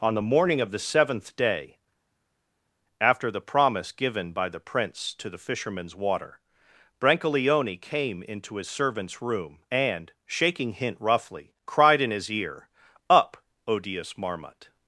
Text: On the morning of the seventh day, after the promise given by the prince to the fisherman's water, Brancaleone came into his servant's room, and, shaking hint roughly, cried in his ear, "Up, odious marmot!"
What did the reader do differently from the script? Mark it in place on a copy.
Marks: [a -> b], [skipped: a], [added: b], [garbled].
On the morning of the seventh day, after the promise given by the prince to the fisherman's water, Brancaleone came into his servant's room, and, shaking hint roughly, cried in his ear, "Up, odious marmot!"